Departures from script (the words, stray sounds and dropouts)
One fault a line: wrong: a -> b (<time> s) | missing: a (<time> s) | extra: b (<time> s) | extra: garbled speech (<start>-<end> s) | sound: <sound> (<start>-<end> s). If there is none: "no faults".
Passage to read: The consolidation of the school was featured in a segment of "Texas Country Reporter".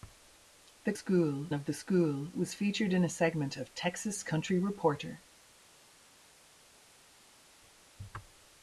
wrong: consolidation -> school (0.9 s)